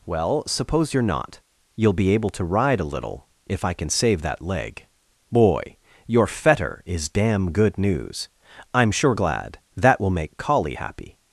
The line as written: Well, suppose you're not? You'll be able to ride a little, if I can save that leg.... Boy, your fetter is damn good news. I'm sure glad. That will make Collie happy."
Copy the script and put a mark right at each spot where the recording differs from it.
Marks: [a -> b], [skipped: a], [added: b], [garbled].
Well, suppose you're not? You'll be able to ride a little, if I can save that leg.... Boy, your fetter is damn good news. I'm sure glad. That will make Collie happy."